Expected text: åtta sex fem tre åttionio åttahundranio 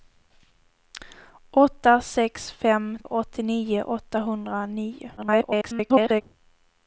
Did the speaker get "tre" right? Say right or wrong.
wrong